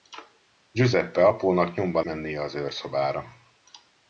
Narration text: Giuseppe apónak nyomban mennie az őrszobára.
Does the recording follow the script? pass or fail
pass